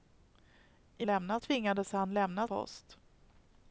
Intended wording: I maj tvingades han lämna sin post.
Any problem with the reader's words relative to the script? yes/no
yes